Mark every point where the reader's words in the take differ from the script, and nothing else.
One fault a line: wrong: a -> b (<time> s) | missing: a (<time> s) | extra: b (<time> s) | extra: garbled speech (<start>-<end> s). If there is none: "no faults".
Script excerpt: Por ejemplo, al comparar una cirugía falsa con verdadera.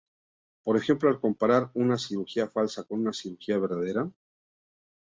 extra: una cirugía (3.0 s)